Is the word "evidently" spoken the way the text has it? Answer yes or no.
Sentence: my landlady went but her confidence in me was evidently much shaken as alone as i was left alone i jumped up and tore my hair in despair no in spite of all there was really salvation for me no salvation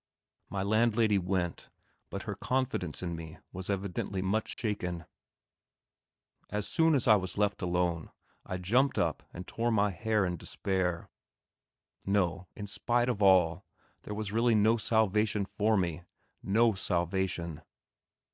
yes